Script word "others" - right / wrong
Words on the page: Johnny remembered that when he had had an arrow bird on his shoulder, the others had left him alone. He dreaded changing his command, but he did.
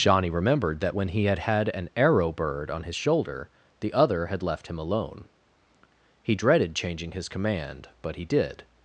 wrong